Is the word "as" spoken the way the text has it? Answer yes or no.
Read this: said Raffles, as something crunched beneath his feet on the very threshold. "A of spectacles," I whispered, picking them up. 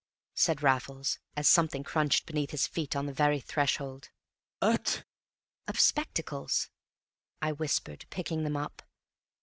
yes